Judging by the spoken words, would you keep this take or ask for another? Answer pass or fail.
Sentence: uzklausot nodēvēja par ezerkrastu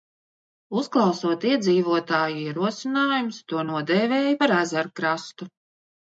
fail